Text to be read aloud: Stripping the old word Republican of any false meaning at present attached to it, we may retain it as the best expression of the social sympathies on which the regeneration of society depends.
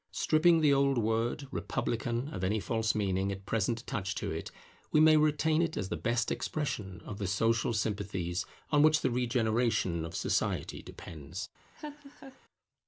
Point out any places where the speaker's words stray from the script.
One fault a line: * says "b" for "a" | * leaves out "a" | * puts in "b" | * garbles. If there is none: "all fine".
all fine